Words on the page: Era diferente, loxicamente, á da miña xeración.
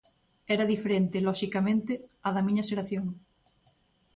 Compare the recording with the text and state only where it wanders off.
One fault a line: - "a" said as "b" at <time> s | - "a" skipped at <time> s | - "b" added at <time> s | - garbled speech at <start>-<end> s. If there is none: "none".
none